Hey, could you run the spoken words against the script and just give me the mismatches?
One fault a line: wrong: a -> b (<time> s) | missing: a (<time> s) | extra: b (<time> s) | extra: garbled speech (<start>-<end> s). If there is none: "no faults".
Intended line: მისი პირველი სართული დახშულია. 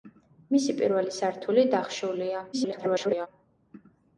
extra: garbled speech (2.5-3.3 s)